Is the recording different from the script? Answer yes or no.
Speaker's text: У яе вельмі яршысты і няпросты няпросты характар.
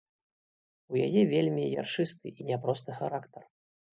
yes